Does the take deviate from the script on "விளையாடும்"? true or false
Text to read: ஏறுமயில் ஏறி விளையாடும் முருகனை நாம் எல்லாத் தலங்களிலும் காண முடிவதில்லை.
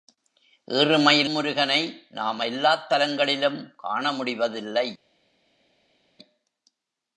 true